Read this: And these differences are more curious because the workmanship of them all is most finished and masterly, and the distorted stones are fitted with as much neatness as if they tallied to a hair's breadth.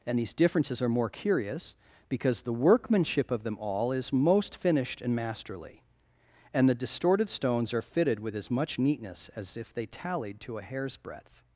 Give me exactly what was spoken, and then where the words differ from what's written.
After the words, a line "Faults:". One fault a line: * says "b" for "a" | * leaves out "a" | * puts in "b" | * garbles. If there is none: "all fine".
And these differences are more curious because the workmanship of them all is most finished and masterly, and the distorted stones are fitted with as much neatness as if they tallied to a hair's breadth.
Faults:
all fine